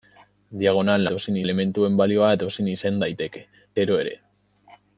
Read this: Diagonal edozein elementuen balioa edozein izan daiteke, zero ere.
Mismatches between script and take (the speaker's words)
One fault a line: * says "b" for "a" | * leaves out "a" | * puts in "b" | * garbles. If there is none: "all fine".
all fine